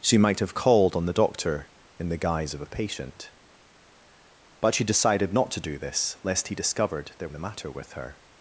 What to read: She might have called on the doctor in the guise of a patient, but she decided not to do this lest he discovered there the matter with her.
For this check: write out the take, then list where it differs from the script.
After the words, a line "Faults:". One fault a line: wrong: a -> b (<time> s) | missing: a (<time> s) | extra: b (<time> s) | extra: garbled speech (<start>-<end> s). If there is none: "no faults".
She might have called on the doctor in the guise of a patient, but she decided not to do this lest he discovered there the matter with her.
Faults:
no faults